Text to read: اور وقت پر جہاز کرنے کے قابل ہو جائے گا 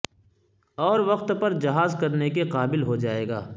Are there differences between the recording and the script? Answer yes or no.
no